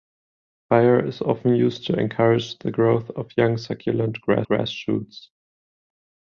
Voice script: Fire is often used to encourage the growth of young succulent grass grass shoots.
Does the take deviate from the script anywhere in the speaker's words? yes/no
no